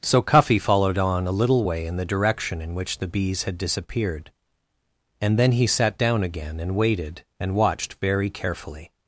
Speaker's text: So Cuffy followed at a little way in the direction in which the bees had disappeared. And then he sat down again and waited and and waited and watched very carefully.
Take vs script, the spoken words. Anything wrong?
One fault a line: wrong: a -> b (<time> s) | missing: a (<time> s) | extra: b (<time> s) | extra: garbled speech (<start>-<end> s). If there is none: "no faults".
wrong: at -> on (1.0 s)
missing: and waited and (7.6 s)